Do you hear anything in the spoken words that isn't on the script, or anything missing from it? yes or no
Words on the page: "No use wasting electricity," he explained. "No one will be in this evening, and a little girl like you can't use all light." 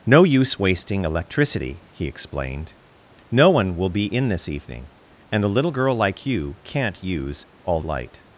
no